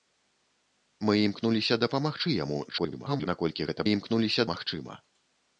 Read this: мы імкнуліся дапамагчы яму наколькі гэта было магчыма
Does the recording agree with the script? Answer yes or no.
no